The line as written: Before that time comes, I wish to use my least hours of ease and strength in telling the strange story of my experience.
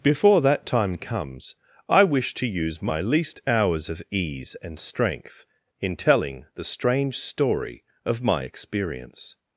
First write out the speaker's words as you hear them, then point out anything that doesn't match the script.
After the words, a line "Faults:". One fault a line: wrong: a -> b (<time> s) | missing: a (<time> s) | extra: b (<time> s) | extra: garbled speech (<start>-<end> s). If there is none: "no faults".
Before that time comes, I wish to use my least hours of ease and strength in telling the strange story of my experience.
Faults:
no faults